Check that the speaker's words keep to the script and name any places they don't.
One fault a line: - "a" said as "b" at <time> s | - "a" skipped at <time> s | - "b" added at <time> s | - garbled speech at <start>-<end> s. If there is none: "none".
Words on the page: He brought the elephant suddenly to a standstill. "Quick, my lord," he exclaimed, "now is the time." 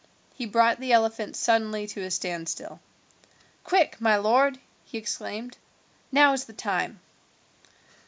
none